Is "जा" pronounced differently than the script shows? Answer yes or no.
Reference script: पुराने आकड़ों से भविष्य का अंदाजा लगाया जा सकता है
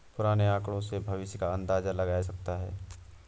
yes